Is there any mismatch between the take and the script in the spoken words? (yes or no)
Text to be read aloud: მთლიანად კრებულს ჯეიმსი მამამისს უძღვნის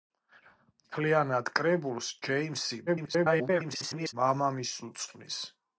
yes